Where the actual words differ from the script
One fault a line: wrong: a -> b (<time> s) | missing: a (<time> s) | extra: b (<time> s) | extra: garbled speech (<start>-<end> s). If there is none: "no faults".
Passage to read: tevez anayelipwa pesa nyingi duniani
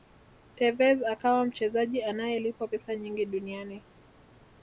extra: akawa mchezaji (1.0 s)